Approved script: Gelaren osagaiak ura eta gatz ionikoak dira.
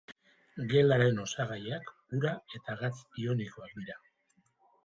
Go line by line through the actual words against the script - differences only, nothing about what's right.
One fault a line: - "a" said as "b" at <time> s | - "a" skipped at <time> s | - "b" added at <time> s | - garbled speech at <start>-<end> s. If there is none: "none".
none